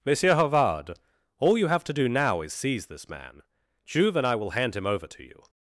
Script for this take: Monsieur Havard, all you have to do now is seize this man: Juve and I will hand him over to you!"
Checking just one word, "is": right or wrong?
right